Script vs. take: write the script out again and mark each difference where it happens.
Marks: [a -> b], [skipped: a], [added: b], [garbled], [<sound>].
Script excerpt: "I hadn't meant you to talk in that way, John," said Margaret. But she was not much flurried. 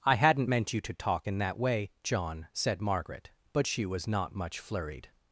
"I hadn't meant you to talk in that way, John," said Margaret. But she was not much flurried.